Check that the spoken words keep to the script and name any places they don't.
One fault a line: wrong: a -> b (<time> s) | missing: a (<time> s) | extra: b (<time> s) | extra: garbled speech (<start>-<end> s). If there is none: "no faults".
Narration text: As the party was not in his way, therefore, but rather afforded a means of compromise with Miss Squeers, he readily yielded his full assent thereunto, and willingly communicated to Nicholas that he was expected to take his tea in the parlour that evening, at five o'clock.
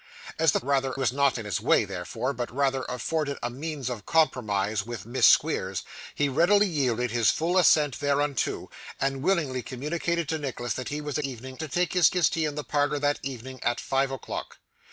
wrong: party -> rather (0.6 s)
wrong: expected -> evening (11.2 s)
extra: his (12.1 s)